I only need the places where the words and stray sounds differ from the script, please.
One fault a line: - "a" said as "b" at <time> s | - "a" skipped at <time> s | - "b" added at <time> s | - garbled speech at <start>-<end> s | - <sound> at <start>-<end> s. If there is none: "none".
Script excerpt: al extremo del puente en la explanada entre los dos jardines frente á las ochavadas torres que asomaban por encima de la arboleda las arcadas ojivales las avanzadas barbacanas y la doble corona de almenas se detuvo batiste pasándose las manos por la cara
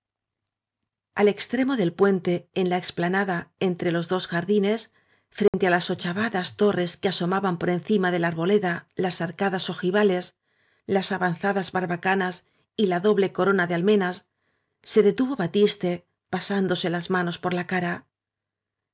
- dropout at 5.5-5.5 s